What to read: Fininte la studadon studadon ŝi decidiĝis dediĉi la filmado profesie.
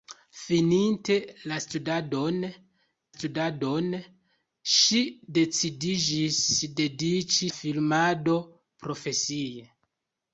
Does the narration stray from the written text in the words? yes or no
no